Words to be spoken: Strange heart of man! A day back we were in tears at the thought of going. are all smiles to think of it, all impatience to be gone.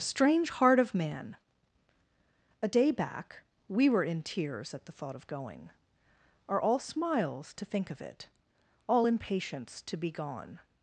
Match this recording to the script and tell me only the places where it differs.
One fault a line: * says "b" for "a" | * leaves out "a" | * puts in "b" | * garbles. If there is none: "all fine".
all fine